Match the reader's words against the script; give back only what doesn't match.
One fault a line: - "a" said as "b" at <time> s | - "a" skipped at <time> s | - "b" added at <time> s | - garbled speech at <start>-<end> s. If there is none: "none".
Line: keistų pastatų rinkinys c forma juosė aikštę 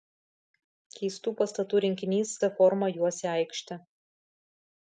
none